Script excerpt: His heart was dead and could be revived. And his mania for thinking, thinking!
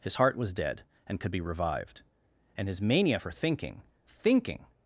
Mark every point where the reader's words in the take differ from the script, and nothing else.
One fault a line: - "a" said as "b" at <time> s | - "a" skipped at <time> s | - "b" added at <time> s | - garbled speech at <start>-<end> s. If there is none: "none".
none